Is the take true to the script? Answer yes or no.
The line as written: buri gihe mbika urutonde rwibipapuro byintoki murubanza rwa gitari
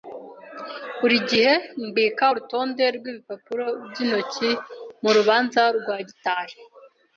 yes